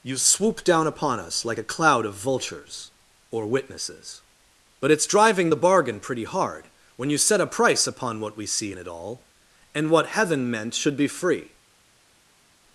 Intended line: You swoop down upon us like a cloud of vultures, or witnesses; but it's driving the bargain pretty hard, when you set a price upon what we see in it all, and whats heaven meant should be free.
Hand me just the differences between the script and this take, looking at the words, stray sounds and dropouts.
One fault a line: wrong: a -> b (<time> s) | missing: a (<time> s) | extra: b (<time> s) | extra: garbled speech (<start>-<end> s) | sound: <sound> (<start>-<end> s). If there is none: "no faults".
wrong: whats -> what (9.9 s)